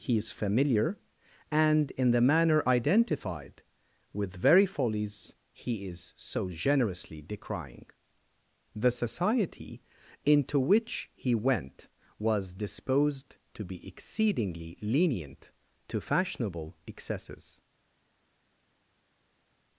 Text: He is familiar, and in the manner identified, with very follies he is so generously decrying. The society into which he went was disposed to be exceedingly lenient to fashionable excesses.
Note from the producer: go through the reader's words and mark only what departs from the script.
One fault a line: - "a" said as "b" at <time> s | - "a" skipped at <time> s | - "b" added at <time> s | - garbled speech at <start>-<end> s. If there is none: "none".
none